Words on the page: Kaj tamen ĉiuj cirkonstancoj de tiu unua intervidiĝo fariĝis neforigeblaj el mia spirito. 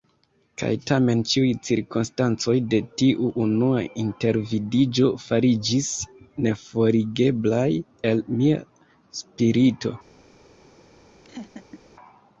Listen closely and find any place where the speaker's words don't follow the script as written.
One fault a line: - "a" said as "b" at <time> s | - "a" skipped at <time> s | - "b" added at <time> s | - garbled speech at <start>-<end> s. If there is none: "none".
none